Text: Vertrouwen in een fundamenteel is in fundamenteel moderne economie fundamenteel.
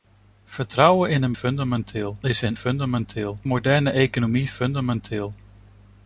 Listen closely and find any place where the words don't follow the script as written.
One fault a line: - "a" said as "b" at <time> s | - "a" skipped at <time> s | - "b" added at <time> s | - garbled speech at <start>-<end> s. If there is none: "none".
none